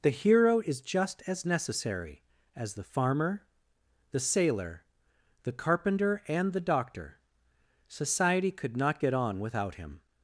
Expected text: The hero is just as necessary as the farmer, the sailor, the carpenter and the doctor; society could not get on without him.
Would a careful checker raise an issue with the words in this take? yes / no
no